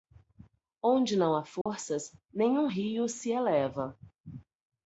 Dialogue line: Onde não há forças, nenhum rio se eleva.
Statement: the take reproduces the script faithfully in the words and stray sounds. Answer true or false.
false